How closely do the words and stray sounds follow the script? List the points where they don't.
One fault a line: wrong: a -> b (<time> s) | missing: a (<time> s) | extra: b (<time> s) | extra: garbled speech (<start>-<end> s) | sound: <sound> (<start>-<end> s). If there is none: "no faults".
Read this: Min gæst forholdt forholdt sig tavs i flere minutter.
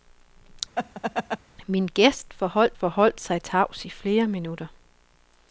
sound: laugh (0.8-1.4 s)